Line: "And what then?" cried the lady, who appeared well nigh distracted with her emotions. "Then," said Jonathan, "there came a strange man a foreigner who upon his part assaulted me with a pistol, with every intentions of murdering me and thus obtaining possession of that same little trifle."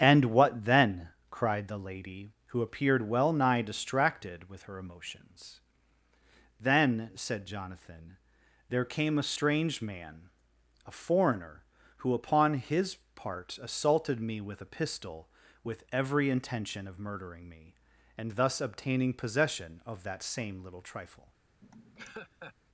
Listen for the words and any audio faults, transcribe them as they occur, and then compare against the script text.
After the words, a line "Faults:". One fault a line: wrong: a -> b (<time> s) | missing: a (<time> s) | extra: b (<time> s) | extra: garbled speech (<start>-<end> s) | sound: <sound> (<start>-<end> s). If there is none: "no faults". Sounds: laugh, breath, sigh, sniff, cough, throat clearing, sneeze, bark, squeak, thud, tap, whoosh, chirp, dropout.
"And what then?" cried the lady, who appeared well nigh distracted with her emotions. "Then," said Jonathan, "there came a strange man a foreigner who upon his part assaulted me with a pistol, with every intention of murdering me and thus obtaining possession of that same little trifle."
Faults:
wrong: intentions -> intention (16.3 s)
sound: laugh (21.6-22.5 s)